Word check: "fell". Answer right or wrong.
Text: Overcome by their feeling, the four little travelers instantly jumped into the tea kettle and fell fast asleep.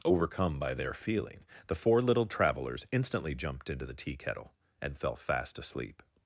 right